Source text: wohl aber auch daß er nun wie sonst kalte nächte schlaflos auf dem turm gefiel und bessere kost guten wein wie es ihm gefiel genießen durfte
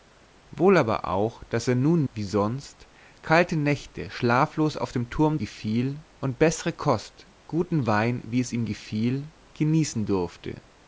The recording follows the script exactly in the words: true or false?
true